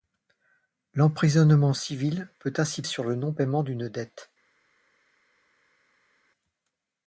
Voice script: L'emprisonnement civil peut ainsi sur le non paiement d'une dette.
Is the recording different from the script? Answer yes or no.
no